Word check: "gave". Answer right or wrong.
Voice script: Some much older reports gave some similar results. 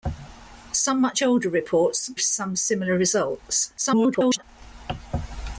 wrong